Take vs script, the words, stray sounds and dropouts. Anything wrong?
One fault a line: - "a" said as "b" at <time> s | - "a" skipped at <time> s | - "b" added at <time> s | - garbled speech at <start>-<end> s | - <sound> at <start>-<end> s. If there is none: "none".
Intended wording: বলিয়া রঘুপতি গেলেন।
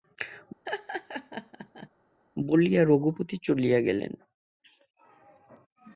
- laugh at 0.7-1.9 s
- "চলিয়া" added at 3.4 s